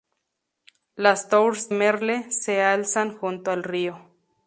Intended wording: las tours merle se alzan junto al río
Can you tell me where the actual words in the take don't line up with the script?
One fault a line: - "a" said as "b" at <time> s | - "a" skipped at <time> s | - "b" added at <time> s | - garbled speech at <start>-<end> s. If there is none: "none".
none